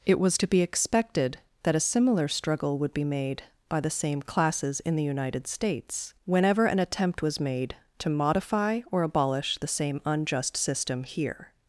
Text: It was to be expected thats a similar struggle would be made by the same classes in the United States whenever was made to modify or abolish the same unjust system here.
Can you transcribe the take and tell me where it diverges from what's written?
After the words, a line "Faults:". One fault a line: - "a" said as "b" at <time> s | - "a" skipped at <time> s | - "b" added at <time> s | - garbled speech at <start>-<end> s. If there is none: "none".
It was to be expected that a similar struggle would be made by the same classes in the United States whenever an attempt was made to modify or abolish the same unjust system here.
Faults:
- "thats" said as "that" at 1.6 s
- "an attempt" added at 6.7 s